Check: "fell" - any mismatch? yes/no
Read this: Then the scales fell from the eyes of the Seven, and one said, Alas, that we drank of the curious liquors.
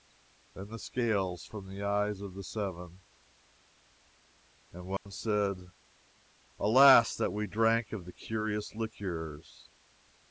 yes